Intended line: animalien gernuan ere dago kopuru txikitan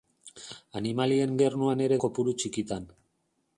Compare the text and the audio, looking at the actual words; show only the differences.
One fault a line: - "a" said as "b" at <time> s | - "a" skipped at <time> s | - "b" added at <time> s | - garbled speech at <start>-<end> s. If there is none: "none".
- "dago" skipped at 2.0 s